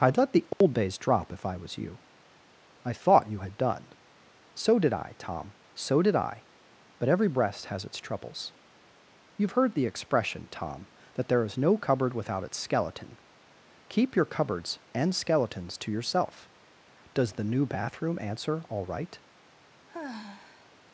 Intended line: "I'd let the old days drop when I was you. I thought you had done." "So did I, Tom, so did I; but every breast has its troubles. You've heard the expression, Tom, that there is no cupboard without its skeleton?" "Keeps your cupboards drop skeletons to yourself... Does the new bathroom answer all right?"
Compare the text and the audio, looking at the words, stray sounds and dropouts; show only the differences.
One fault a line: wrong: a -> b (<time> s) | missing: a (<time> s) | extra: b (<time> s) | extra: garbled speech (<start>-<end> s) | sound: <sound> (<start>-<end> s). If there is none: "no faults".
sound: dropout (0.5-0.6 s)
wrong: when -> if (1.3 s)
wrong: Keeps -> Keep (13.9 s)
wrong: drop -> and (14.9 s)
sound: sigh (19.9-20.7 s)